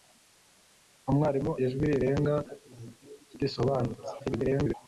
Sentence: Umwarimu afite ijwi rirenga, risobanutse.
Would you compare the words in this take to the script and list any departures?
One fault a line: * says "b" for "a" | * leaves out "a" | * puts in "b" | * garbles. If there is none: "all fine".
* leaves out "afite"
* garbles